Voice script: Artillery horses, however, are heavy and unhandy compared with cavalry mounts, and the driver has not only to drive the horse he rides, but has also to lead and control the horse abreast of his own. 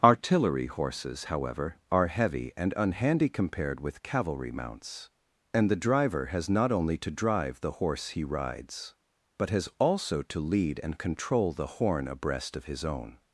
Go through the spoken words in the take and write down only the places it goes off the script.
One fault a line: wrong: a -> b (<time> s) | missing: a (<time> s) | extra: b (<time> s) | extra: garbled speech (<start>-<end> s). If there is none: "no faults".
wrong: horse -> horn (11.7 s)